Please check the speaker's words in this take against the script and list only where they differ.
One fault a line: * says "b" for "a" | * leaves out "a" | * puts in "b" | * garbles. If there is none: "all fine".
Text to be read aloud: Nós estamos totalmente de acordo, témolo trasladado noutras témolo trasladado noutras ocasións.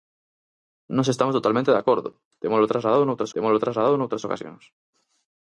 all fine